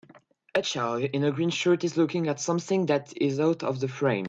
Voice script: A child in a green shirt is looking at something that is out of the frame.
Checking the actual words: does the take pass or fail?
pass